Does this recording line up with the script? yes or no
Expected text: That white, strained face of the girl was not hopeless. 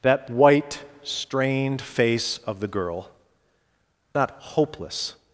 no